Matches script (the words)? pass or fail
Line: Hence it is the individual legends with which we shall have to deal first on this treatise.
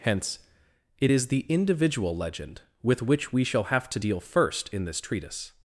fail